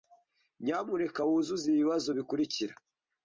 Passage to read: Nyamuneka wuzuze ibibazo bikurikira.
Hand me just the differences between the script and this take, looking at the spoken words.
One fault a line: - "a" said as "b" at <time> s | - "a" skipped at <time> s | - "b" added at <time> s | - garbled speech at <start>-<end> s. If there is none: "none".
none